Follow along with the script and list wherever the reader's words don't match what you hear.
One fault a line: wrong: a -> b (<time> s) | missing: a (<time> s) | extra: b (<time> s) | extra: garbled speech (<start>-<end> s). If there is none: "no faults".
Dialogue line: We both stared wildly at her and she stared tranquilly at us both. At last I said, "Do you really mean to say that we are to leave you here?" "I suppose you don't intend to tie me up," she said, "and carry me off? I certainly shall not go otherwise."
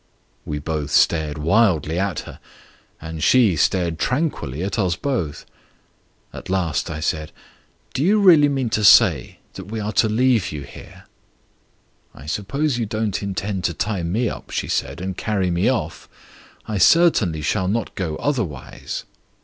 no faults